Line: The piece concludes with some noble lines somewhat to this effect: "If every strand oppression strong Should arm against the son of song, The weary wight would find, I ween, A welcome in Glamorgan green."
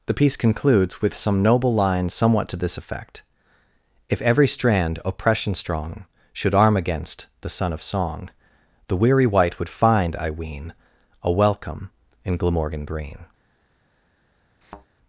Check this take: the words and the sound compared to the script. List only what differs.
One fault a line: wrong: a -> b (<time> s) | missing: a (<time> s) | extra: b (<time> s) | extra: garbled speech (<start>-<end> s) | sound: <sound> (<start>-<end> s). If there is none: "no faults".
sound: thud (14.6-14.9 s)